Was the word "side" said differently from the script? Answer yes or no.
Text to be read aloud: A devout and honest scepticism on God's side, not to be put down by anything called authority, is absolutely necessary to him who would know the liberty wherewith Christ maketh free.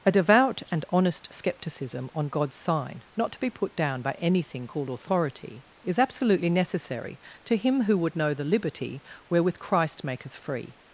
yes